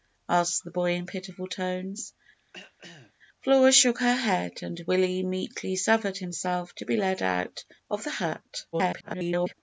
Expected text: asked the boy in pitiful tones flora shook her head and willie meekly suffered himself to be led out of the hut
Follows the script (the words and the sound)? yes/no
no